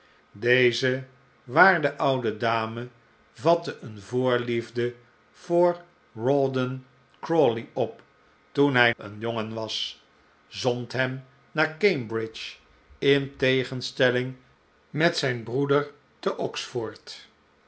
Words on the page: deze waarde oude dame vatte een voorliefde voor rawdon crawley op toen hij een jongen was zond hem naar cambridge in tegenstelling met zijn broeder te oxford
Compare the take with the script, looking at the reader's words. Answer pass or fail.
pass